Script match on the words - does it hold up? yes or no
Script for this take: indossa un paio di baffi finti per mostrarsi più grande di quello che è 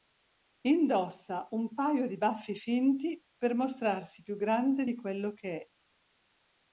yes